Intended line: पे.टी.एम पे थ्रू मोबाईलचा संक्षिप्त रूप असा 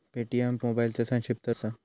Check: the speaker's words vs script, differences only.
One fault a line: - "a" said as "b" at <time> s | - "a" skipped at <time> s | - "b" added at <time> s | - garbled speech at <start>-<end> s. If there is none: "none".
- "पे थ्रू" skipped at 0.6 s
- "रूप" skipped at 1.5 s